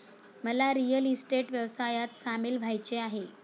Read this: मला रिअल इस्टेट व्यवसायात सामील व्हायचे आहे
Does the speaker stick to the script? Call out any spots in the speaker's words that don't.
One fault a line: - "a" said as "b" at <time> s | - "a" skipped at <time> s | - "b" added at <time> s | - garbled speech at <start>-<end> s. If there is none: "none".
none